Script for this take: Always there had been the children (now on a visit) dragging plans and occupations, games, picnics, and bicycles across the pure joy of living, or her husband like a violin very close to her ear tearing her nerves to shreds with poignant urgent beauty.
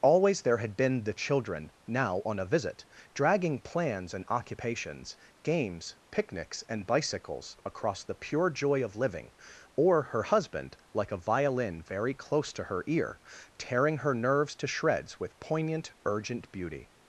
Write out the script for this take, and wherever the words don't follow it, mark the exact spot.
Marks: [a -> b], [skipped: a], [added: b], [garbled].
Always there had been the children (now on a visit) dragging plans and occupations, games, picnics, and bicycles across the pure joy of living, or her husband like a violin very close to her ear tearing her nerves to shreds with poignant urgent beauty.